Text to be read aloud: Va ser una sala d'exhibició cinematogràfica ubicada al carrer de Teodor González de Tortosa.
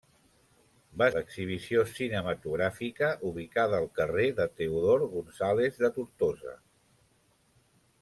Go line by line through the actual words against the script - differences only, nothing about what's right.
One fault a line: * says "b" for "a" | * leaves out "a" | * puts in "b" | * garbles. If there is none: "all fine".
* leaves out "ser una sala"